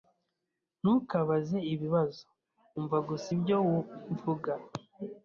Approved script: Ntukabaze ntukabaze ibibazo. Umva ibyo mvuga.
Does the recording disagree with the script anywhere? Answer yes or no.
yes